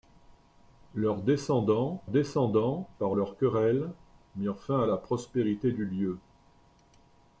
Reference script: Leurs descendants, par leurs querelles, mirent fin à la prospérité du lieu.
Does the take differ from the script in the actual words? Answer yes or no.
yes